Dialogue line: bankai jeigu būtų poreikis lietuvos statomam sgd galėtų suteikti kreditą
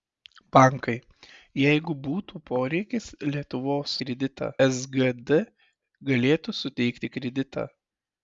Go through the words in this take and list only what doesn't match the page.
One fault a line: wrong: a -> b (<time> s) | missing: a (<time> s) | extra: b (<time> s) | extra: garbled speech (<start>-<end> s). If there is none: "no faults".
wrong: statomam -> kreditą (4.0 s)